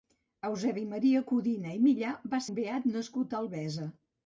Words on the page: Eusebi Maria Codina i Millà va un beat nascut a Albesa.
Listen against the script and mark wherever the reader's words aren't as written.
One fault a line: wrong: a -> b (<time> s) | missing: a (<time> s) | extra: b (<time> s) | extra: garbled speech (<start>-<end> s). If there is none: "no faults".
no faults